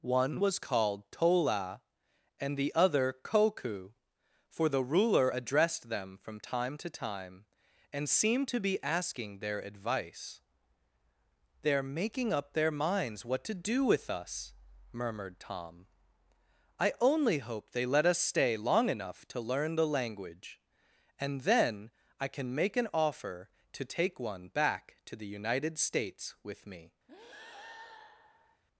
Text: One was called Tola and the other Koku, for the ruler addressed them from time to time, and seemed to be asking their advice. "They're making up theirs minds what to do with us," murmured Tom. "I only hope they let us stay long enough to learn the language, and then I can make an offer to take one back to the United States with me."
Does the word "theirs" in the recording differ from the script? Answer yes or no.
yes